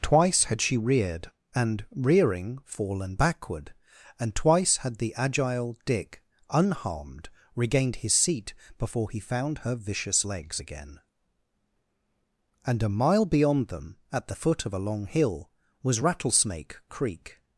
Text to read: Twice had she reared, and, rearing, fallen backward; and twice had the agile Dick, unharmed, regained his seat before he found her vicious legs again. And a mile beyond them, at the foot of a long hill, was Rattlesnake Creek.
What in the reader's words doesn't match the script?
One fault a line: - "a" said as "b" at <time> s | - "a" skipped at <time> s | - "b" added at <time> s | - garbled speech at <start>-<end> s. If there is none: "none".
none